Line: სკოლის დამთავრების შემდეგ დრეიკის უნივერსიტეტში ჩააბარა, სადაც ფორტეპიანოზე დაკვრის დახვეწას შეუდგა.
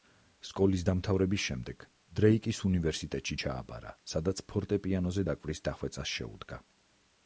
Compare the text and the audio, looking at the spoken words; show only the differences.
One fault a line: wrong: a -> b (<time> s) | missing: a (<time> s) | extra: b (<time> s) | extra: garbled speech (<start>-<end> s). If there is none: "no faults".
no faults